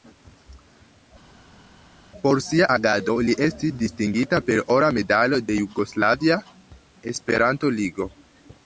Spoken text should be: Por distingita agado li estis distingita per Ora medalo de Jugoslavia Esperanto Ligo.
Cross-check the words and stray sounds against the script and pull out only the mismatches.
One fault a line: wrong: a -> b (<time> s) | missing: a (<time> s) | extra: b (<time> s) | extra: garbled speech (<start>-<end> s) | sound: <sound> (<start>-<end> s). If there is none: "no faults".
wrong: distingita -> sia (2.5 s)